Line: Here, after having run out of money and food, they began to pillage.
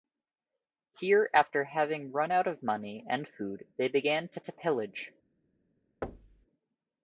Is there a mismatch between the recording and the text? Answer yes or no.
yes